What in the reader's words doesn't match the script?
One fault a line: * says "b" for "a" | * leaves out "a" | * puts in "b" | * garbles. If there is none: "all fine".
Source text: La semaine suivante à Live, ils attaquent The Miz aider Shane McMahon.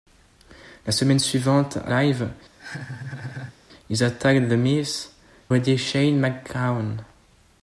all fine